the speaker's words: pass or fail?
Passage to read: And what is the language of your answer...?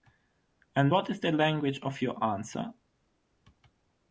pass